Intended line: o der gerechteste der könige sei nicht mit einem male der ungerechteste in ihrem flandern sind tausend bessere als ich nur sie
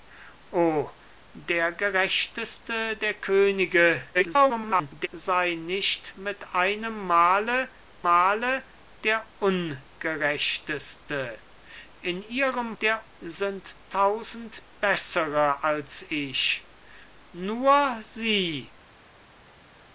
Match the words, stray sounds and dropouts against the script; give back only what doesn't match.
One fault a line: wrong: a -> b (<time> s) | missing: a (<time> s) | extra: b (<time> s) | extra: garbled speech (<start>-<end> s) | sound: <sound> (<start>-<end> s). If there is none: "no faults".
extra: garbled speech (4.1-5.1 s)
extra: male (8.0 s)
wrong: flandern -> der (12.8 s)